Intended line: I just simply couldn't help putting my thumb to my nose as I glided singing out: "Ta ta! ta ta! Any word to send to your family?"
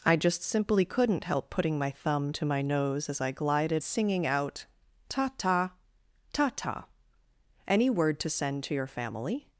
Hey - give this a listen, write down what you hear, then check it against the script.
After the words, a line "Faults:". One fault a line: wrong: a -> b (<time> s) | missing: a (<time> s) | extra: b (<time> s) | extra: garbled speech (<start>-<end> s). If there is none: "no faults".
I just simply couldn't help putting my thumb to my nose as I glided singing out: "Ta ta! ta ta! Any word to send to your family?"
Faults:
no faults